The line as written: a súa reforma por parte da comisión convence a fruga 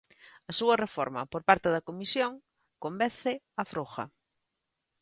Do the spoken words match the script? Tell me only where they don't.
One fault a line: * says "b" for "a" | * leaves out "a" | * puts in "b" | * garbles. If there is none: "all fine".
all fine